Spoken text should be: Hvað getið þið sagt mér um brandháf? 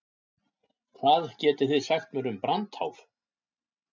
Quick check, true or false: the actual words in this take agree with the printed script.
true